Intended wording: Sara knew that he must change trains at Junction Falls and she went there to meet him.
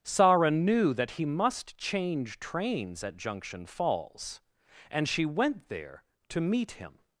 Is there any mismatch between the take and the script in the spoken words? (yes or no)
no